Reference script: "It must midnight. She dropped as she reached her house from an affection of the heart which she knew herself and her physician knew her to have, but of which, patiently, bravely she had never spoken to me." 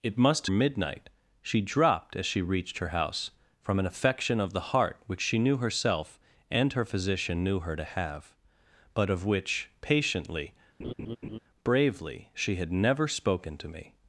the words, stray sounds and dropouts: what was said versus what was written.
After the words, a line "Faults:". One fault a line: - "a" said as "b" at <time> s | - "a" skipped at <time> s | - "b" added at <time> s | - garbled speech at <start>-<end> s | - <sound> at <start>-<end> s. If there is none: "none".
"It must midnight. She dropped as she reached her house from an affection of the heart which she knew herself and her physician knew her to have, but of which, patiently, bravely she had never spoken to me."
Faults:
- laugh at 10.8-11.4 s